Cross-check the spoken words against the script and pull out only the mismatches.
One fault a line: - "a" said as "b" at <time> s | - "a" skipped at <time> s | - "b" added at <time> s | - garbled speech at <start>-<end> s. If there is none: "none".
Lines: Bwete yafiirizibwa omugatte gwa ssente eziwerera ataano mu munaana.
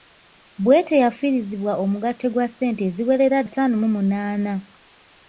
none